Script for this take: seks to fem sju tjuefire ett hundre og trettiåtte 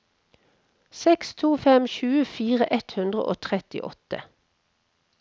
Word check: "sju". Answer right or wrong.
wrong